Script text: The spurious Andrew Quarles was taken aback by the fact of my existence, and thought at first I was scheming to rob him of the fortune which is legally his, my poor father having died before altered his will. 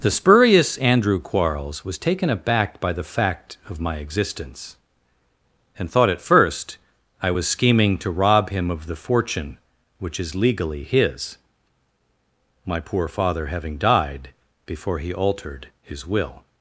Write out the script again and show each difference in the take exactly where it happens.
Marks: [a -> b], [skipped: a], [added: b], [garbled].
The spurious Andrew Quarles was taken aback by the fact of my existence, and thought at first I was scheming to rob him of the fortune which is legally his, my poor father having died before [added: he] altered his will.